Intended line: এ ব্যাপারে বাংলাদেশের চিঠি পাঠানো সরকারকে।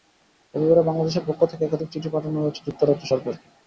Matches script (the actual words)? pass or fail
fail